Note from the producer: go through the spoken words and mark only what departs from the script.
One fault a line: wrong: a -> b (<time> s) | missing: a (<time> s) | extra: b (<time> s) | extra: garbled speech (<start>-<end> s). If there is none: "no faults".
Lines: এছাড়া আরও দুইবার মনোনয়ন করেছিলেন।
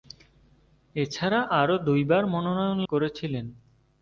no faults